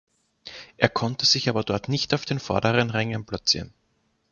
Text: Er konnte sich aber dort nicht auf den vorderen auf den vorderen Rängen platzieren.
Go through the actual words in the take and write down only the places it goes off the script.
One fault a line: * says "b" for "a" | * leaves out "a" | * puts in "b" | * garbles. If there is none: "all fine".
* leaves out "auf den vorderen"